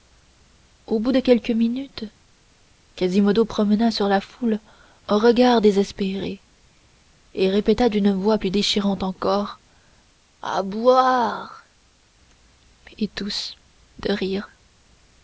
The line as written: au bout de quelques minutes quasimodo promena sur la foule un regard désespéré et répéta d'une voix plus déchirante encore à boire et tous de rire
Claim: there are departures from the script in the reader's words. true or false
false